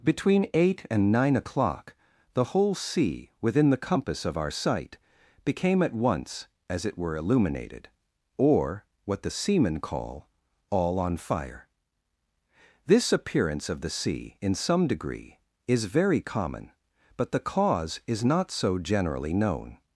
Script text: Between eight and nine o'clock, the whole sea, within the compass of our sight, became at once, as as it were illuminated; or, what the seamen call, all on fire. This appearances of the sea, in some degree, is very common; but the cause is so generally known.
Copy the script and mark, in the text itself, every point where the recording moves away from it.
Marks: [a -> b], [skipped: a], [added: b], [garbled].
Between eight and nine o'clock, the whole sea, within the compass of our sight, became at once, as [skipped: as] it were illuminated; or, what the seamen call, all on fire. This [appearances -> appearance] of the sea, in some degree, is very common; but the cause is [added: not] so generally known.